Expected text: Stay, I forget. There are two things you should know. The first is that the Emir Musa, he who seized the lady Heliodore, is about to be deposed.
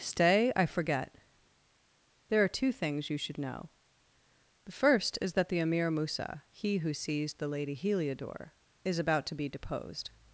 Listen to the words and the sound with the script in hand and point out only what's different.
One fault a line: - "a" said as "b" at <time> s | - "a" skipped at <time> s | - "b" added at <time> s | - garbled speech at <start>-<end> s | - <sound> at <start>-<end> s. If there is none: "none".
none